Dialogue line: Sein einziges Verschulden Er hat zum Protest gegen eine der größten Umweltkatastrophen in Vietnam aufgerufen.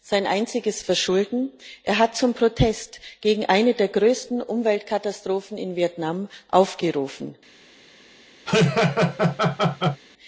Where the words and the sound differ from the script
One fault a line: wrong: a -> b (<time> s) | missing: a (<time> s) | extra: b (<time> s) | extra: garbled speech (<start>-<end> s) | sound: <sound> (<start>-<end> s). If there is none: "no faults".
sound: laugh (8.5-10.0 s)